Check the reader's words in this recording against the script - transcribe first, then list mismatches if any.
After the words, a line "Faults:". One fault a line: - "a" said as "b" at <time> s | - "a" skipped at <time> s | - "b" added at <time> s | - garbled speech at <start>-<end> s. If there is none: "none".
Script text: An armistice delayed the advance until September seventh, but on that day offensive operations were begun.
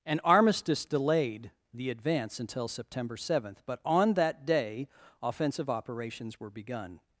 An armistice delayed the advance until September seventh, but on that day offensive operations were begun.
Faults:
none